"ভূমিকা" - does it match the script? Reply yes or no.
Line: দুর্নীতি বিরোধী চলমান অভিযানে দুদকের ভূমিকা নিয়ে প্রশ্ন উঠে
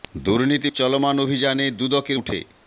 no